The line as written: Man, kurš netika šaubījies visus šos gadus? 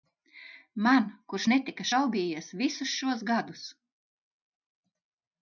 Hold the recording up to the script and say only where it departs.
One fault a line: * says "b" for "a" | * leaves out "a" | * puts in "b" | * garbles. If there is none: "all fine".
all fine